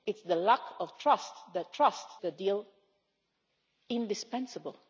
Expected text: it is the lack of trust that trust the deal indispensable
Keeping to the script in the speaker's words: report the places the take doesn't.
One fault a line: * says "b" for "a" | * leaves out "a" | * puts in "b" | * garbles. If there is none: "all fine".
all fine